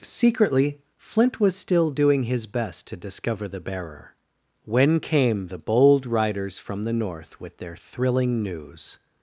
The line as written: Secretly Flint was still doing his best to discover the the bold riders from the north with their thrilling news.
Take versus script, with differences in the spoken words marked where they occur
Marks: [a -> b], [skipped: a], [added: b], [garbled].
Secretly Flint was still doing his best to discover the [added: bearer when came] the bold riders from the north with their thrilling news.